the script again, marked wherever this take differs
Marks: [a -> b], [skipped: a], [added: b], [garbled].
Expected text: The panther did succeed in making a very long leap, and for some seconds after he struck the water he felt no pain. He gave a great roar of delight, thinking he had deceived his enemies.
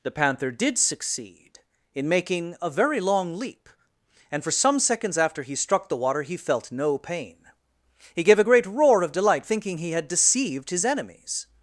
The panther did succeed in making a very long leap, and for some seconds after he struck the water he felt no pain. He gave a great roar of delight, thinking he had deceived his enemies.